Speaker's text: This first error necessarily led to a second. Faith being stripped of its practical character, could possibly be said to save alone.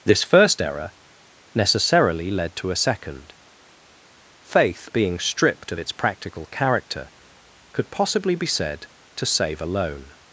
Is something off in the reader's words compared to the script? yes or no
no